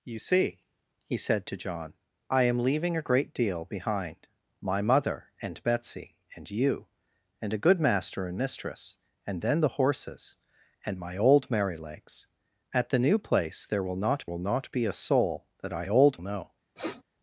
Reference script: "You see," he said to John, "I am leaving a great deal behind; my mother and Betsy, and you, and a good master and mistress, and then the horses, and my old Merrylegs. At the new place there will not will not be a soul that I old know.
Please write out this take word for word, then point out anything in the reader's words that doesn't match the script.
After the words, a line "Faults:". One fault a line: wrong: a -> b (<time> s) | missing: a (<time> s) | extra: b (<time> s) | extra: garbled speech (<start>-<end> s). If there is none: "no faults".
"You see," he said to John, "I am leaving a great deal behind; my mother and Betsy, and you, and a good master and mistress, and then the horses, and my old Merrylegs. At the new place there will not will not be a soul that I old know.
Faults:
no faults